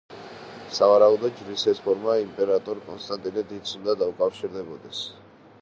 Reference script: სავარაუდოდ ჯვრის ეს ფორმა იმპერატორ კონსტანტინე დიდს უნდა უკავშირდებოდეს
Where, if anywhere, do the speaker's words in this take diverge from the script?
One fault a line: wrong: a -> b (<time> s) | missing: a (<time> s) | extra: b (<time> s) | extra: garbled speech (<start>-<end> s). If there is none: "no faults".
no faults